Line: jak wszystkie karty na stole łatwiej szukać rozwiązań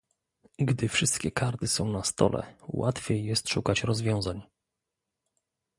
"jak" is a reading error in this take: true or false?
true